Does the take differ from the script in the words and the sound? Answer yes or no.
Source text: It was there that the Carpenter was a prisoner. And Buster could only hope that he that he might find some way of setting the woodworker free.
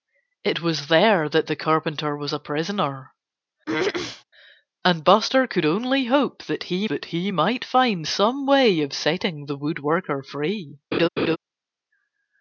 yes